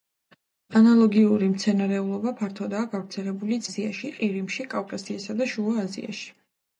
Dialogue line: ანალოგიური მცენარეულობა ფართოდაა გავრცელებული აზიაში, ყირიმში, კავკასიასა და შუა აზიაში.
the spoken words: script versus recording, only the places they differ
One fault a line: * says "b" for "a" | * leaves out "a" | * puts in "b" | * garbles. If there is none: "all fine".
all fine